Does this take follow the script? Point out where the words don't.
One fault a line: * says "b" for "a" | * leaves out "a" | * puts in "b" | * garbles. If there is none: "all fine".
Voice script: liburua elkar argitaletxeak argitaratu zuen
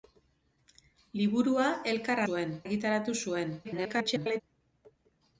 * says "zuen" for "argitaletxeak"
* garbles